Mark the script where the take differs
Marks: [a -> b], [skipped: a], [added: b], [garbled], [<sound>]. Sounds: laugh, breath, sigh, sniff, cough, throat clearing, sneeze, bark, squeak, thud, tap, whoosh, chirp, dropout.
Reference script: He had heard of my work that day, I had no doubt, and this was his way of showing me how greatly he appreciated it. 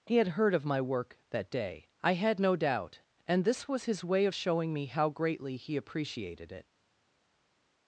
He had heard of my work that day, I had no doubt, and this was his way of showing me how greatly he appreciated it.